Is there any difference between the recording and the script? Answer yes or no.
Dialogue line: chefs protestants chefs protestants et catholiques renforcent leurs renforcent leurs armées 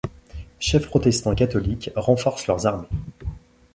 yes